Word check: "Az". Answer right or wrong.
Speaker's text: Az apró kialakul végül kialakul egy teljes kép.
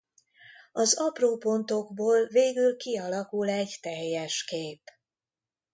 right